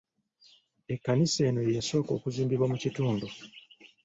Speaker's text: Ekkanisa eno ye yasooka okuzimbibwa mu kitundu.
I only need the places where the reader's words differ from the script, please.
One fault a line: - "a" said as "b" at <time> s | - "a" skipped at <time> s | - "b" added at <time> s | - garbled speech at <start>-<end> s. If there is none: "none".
none